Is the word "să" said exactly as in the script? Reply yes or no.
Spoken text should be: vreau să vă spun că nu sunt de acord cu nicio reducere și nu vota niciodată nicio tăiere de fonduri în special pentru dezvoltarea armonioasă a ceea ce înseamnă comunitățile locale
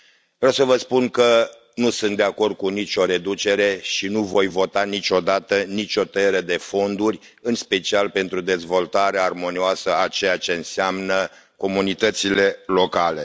yes